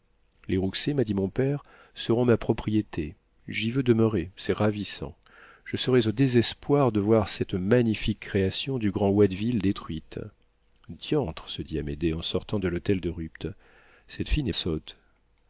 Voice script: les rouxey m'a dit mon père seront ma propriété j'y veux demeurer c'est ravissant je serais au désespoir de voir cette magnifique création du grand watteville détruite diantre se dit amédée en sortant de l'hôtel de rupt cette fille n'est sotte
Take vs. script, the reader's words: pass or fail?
pass